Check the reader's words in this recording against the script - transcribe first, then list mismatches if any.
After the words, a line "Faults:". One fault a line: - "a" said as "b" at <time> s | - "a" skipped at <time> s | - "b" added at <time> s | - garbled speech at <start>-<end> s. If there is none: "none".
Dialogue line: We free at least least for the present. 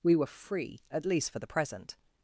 We were free at least for the present.
Faults:
- "were" added at 0.1 s
- "least" skipped at 1.3 s